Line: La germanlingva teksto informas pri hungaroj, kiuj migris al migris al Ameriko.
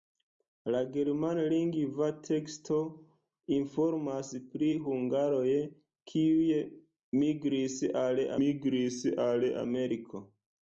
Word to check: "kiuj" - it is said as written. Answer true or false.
true